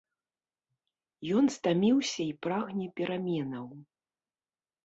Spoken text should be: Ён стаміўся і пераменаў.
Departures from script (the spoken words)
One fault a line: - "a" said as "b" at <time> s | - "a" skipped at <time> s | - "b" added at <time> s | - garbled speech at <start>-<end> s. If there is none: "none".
- "прагне" added at 2.5 s